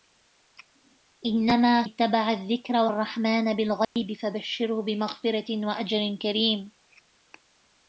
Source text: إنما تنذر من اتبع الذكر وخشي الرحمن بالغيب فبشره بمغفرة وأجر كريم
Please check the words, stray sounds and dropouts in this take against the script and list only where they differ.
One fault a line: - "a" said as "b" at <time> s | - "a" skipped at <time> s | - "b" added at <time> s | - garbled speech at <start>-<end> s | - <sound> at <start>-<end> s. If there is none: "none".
- "تنذر من" skipped at 1.8 s
- "وخشي" skipped at 2.9 s
- dropout at 3.8-4.0 s